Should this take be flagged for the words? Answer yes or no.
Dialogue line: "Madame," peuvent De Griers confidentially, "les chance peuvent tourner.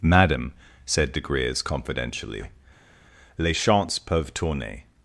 yes